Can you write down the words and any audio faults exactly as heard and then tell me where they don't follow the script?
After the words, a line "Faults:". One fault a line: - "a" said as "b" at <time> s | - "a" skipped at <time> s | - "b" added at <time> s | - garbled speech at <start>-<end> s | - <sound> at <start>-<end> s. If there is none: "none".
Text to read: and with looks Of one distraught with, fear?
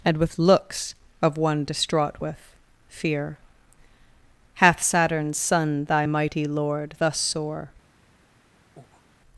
and with looks Of one distraught with, fear? hath Saturn's son, Thy mighty Lord, thus sore
Faults:
- "hath Saturn's son Thy mighty Lord thus sore" added at 4.5 s
- breath at 8.8-9.1 s